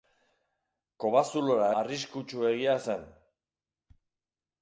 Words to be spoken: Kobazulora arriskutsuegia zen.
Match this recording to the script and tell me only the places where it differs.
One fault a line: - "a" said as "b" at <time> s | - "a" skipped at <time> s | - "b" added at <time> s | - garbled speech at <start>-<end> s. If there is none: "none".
none